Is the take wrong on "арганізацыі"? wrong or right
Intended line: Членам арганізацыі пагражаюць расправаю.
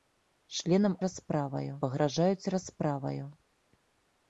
wrong